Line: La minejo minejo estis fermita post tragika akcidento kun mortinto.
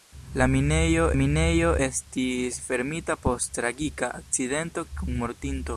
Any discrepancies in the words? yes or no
no